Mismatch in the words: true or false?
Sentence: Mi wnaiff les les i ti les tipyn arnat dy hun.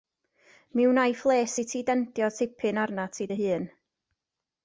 true